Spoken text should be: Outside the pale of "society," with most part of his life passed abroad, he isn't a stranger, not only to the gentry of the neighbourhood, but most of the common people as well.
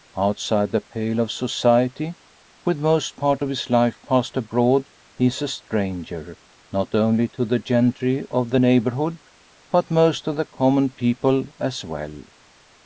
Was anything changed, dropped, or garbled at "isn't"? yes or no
yes